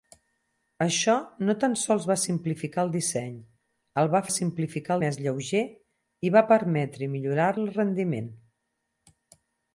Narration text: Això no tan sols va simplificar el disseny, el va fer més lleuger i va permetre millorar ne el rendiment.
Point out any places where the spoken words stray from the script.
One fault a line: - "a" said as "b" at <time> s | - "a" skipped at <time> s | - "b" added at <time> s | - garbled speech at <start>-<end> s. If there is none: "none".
- "fer" said as "simplificar" at 4.3 s
- "ne" skipped at 7.5 s